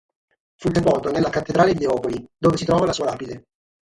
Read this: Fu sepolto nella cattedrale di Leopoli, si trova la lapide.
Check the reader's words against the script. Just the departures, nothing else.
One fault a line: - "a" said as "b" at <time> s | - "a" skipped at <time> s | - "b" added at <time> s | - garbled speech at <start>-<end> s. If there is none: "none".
- "dove" added at 2.4 s
- "sua" added at 2.9 s